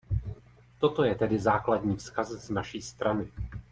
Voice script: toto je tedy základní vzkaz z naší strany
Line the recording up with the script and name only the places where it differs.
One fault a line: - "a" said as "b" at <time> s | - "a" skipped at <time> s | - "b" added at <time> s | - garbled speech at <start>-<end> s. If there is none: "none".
none